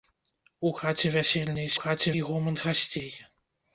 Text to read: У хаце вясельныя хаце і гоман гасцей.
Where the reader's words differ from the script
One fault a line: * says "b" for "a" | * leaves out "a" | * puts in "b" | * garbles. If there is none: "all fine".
all fine